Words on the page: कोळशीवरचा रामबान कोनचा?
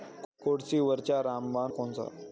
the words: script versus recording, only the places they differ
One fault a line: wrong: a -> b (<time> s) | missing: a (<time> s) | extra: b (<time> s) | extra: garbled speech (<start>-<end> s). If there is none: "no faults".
no faults